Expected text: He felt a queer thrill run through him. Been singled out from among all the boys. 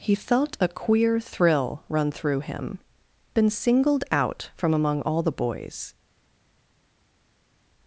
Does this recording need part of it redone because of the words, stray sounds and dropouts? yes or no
no